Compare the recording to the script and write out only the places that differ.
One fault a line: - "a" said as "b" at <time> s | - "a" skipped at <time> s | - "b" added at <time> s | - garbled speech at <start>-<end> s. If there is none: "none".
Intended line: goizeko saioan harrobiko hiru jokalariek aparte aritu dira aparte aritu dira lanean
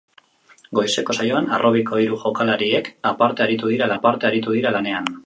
none